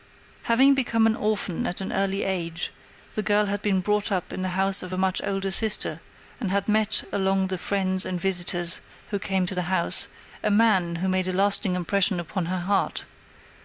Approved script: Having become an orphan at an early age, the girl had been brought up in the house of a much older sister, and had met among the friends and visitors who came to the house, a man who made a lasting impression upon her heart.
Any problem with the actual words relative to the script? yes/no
no